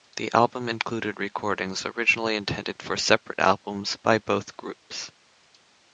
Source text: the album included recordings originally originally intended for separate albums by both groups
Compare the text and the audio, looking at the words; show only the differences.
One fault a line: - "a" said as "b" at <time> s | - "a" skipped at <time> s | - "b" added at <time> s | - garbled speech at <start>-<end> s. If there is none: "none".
- "originally" skipped at 2.4 s